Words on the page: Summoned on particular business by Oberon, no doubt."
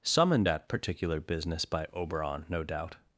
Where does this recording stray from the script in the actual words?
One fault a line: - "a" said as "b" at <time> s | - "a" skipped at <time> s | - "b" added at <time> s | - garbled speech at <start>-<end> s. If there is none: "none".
- "on" said as "at" at 0.5 s